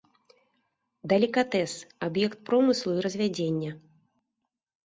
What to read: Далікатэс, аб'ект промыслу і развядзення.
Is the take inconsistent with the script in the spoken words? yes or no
no